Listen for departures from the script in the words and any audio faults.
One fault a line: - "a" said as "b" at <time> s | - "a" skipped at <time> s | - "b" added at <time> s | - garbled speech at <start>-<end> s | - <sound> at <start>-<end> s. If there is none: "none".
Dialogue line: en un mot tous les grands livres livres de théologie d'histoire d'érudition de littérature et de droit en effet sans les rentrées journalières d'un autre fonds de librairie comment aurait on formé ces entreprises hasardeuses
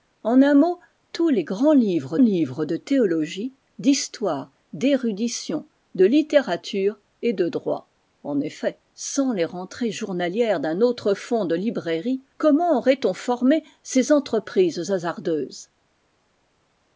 none